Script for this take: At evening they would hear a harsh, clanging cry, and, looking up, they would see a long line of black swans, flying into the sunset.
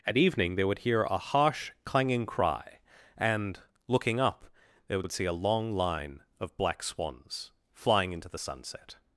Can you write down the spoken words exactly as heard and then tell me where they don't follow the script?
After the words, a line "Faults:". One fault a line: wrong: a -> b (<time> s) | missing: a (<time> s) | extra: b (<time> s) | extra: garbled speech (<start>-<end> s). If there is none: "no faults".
At evening they would hear a harsh, clanging cry, and, looking up, they would would see a long line of black swans, flying into the sunset.
Faults:
extra: would (5.0 s)